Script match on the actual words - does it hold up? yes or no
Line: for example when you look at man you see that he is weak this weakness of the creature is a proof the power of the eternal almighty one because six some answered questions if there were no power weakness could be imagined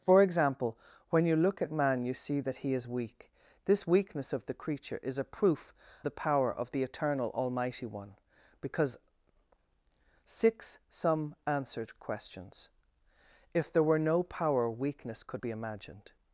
yes